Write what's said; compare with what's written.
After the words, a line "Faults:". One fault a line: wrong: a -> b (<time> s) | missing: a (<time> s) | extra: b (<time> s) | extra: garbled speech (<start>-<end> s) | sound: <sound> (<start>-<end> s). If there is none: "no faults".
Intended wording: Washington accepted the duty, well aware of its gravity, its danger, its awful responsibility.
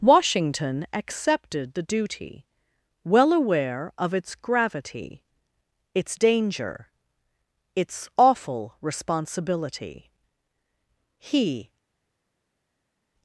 Washington accepted the duty, well aware of its gravity, its danger, its awful responsibility. He
Faults:
extra: He (11.2 s)